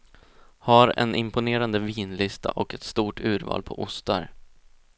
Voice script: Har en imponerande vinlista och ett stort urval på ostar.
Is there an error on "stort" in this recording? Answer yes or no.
no